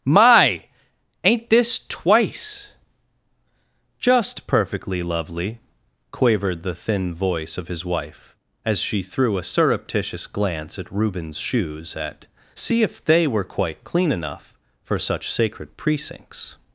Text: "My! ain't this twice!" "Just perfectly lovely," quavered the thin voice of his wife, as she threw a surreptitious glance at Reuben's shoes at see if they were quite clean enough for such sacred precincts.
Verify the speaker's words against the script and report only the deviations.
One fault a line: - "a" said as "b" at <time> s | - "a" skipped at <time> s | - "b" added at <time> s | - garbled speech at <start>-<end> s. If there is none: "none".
none